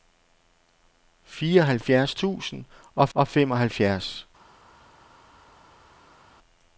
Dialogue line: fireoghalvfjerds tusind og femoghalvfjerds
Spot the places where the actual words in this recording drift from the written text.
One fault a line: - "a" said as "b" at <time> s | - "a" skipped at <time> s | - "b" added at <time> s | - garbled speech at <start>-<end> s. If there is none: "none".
- "og" added at 3.1 s